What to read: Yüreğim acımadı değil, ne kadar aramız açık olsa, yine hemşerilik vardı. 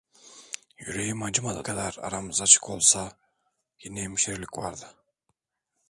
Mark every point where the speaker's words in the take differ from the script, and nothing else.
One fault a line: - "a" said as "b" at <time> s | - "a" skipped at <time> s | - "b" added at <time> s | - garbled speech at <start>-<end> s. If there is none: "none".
- "değil ne" skipped at 1.7 s